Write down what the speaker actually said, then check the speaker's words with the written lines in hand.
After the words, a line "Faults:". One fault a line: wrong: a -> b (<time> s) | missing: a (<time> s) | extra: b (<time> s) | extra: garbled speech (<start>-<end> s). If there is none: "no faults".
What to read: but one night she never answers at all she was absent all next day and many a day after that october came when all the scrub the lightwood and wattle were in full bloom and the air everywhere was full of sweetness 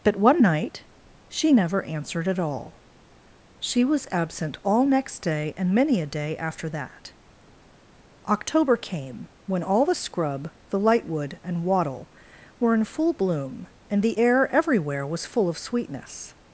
but one night she never answered at all she was absent all next day and many a day after that october came when all the scrub the lightwood and wattle were in full bloom and the air everywhere was full of sweetness
Faults:
wrong: answers -> answered (1.8 s)